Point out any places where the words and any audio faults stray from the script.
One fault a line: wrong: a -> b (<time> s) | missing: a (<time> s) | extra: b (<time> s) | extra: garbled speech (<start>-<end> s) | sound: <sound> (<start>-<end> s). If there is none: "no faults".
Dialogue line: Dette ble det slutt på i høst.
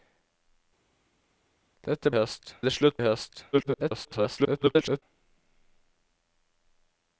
wrong: ble -> høst (2.1 s)
missing: på (3.0 s)
extra: garbled speech (3.5-5.0 s)